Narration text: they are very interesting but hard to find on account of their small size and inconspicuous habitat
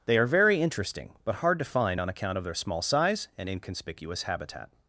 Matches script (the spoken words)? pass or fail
pass